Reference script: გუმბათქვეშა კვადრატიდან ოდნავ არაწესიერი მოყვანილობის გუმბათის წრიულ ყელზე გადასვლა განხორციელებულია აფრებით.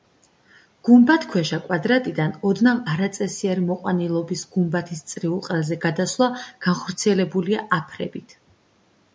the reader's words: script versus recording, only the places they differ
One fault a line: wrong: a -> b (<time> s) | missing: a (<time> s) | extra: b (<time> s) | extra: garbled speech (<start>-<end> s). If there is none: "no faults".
no faults